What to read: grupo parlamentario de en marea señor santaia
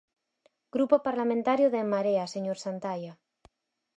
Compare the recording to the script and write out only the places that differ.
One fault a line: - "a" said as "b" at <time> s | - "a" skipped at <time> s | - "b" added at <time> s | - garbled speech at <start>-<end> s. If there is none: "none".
none